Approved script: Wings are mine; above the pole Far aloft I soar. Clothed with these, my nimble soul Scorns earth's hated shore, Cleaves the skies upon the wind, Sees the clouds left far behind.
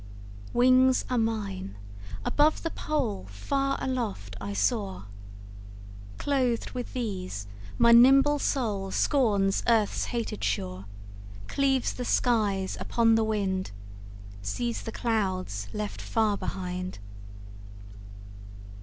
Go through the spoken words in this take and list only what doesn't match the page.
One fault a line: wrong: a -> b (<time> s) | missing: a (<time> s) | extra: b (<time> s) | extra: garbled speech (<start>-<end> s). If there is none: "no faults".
no faults